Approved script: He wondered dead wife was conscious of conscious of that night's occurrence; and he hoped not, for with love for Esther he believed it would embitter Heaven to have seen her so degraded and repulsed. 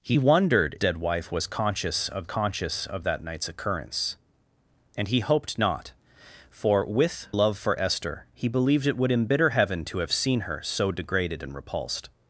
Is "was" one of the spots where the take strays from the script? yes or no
no